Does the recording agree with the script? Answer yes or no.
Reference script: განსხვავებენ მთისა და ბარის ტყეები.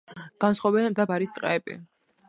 no